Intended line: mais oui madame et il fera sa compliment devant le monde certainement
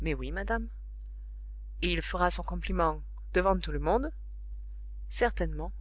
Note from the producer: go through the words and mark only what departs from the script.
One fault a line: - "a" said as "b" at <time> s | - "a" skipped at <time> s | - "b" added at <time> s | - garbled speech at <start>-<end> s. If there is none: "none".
- "sa" said as "son" at 2.3 s
- "tout" added at 3.6 s